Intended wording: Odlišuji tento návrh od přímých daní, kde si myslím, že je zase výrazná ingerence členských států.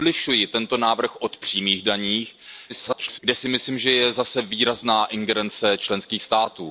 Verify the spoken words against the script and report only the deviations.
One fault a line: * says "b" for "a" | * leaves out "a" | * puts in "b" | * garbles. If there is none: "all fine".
* garbles